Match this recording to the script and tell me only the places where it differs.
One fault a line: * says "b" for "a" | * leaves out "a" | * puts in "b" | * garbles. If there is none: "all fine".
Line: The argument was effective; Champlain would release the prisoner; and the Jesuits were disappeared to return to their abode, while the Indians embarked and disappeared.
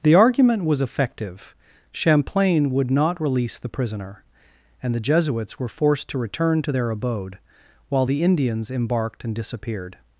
* puts in "not"
* says "forced" for "disappeared"